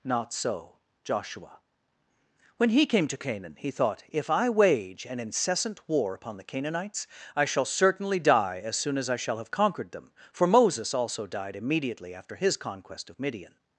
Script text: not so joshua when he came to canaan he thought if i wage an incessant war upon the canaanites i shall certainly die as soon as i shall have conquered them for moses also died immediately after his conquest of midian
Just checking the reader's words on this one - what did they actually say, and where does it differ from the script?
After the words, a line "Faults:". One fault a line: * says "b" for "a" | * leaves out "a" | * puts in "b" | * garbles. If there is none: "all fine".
not so joshua when he came to canaan he thought if i wage an incessant war upon the canaanites i shall certainly die as soon as i shall have conquered them for moses also died immediately after his conquest of midian
Faults:
all fine